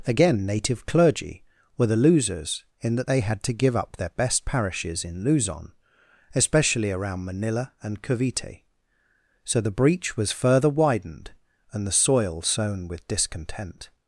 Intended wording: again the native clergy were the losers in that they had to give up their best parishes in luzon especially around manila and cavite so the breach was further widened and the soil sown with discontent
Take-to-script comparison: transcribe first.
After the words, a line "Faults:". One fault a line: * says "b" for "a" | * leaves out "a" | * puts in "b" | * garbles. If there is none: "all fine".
again native clergy were the losers in that they had to give up their best parishes in luzon especially around manila and cavite so the breach was further widened and the soil sown with discontent
Faults:
* leaves out "the"